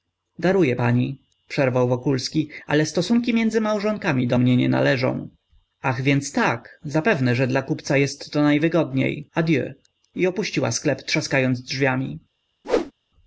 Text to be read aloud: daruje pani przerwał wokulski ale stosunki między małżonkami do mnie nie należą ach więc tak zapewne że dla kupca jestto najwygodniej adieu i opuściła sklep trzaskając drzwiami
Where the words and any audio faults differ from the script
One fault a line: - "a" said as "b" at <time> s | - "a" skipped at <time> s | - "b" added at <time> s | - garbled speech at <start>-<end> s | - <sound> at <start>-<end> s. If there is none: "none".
- whoosh at 12.6-12.9 s